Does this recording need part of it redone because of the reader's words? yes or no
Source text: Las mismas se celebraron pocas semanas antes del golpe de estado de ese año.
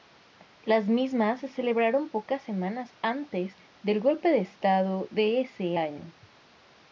no